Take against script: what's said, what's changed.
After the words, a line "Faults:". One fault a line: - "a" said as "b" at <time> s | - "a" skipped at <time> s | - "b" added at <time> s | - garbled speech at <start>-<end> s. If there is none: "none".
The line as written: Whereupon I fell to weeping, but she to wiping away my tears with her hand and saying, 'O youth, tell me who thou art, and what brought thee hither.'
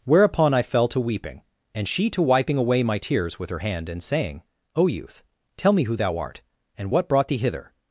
Whereupon I fell to weeping, and she to wiping away my tears with her hand and saying, 'O youth, tell me who thou art, and what brought thee hither.'
Faults:
- "but" said as "and" at 1.8 s